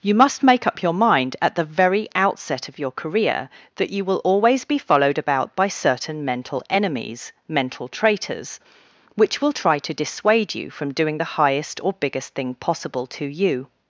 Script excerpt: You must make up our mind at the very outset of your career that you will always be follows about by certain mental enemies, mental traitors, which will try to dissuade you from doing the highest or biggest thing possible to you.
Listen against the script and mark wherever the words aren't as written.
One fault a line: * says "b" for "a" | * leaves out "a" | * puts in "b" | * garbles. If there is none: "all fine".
* says "your" for "our"
* says "followed" for "follows"